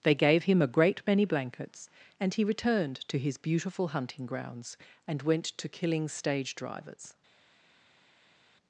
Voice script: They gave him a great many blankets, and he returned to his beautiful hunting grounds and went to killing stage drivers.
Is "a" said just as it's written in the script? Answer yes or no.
yes